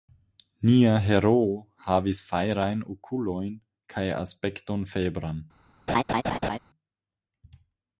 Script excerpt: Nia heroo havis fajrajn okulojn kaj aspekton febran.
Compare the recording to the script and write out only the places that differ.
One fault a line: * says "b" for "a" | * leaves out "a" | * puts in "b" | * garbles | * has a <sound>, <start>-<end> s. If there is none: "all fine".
* has a laugh, 5.9-6.6 s